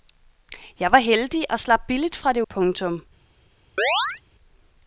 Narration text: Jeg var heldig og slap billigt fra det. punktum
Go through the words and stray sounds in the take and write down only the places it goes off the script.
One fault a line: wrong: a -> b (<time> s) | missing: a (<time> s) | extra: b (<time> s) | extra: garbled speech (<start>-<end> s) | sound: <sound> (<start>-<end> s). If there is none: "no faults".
sound: chirp (3.8-4.2 s)